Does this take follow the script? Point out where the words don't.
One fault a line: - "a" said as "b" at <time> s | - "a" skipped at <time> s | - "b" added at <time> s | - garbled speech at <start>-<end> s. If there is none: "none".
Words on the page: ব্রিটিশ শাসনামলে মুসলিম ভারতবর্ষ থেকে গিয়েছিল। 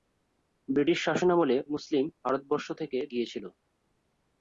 none